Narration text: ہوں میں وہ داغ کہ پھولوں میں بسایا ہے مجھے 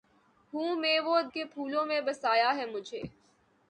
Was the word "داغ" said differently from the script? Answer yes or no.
yes